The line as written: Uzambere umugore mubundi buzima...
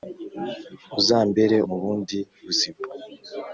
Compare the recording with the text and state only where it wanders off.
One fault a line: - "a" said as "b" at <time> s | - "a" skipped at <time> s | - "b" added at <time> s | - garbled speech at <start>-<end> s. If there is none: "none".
- "umugore" skipped at 1.6 s